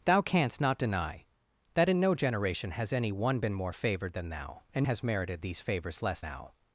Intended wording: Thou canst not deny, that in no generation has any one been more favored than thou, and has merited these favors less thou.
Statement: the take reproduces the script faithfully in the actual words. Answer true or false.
true